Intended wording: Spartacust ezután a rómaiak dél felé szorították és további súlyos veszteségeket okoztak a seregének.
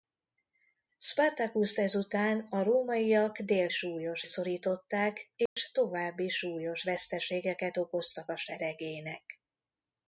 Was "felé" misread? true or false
true